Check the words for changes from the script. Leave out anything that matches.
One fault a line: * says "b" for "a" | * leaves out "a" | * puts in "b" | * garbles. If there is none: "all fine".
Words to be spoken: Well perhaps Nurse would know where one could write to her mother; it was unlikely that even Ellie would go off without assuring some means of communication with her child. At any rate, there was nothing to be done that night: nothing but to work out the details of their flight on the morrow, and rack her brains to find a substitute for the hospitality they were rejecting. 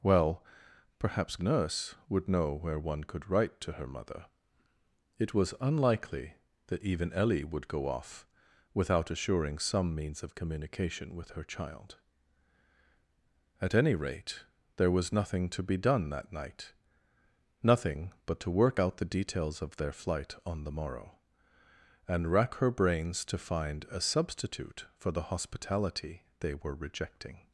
all fine